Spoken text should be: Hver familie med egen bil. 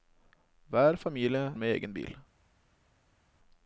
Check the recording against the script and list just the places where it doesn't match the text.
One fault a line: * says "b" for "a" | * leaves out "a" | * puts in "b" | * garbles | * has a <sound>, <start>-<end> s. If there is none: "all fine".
all fine